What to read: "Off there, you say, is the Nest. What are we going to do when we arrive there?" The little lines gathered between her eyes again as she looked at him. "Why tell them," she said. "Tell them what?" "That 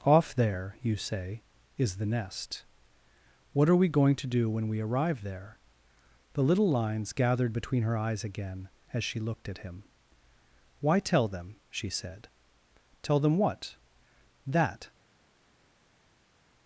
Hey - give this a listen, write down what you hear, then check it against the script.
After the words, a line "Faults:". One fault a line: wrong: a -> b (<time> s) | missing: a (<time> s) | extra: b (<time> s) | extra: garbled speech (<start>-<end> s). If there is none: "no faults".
"Off there, you say, is the Nest. What are we going to do when we arrive there?" The little lines gathered between her eyes again as she looked at him. "Why tell them," she said. "Tell them what?" "That
Faults:
no faults